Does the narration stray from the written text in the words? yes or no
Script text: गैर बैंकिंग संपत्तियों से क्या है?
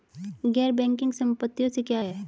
no